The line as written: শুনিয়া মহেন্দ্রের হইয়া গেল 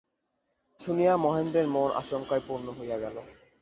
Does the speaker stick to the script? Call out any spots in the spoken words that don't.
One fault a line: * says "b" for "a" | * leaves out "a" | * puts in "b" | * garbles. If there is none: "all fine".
* puts in "মন আশঙ্কায় পূর্ণ"